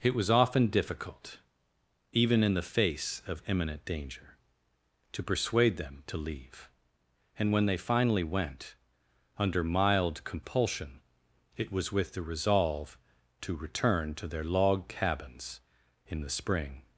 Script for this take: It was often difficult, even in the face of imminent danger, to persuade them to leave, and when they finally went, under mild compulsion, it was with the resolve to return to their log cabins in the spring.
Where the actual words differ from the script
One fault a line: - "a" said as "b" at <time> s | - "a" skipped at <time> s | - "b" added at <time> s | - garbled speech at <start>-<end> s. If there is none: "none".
none